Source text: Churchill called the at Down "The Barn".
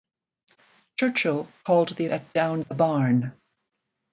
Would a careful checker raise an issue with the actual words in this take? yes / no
no